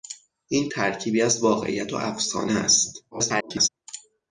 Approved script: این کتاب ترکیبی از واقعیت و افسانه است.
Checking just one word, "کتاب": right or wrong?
wrong